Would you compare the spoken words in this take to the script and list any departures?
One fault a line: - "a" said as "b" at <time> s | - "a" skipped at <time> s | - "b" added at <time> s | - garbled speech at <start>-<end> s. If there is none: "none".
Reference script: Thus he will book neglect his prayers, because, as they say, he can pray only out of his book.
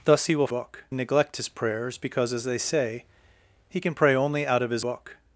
none